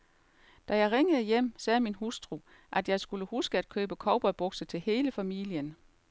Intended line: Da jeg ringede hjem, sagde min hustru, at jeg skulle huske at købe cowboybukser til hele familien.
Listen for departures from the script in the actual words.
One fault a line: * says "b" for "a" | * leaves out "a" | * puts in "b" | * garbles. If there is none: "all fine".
all fine